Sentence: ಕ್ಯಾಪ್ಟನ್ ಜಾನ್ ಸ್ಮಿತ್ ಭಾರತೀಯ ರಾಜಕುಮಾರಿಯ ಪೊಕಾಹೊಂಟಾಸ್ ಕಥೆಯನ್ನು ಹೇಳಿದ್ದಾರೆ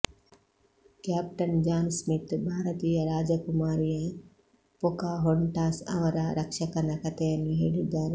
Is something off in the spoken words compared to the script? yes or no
yes